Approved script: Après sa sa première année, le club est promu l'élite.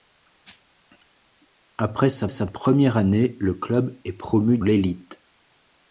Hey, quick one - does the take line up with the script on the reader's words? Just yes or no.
yes